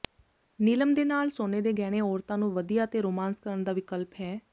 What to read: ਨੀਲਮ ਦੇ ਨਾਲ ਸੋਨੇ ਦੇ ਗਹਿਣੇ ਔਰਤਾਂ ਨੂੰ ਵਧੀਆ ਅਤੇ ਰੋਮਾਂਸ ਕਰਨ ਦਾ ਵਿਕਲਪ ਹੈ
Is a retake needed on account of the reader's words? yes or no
no